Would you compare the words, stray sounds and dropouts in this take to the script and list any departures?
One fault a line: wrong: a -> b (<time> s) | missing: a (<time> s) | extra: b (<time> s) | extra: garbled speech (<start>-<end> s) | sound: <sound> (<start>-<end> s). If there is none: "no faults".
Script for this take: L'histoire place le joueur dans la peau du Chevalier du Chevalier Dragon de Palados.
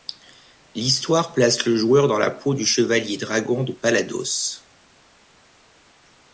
missing: du Chevalier (3.2 s)